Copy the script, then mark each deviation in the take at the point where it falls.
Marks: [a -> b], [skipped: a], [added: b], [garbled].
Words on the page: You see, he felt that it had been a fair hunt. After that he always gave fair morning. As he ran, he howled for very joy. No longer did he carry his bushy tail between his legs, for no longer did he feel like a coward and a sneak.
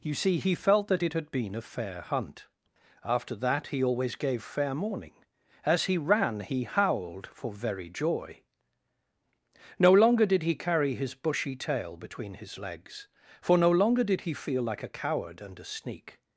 You see, he felt that it had been a fair hunt. After that he always gave fair morning. As he ran, he howled for very joy. No longer did he carry his bushy tail between his legs, for no longer did he feel like a coward and a sneak.